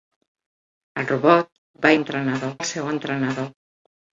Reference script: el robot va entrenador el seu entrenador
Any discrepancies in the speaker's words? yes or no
no